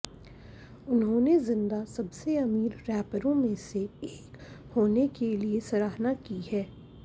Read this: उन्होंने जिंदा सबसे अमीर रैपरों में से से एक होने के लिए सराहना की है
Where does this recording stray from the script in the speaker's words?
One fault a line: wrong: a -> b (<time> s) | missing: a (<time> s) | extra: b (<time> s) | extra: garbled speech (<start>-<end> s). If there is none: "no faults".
missing: से (3.8 s)